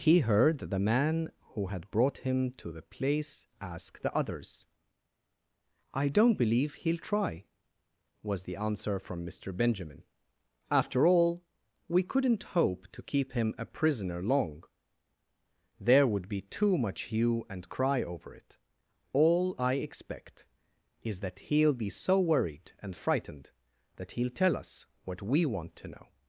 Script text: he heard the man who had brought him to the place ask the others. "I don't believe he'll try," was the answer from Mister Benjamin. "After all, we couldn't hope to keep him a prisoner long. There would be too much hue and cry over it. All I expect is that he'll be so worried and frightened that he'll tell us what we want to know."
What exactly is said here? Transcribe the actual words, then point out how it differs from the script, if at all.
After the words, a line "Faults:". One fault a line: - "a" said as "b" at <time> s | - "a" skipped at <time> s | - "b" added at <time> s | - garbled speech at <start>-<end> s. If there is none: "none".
he heard the man who had brought him to the place ask the others. "I don't believe he'll try," was the answer from Mister Benjamin. "After all, we couldn't hope to keep him a prisoner long. There would be too much hue and cry over it. All I expect is that he'll be so worried and frightened that he'll tell us what we want to know."
Faults:
none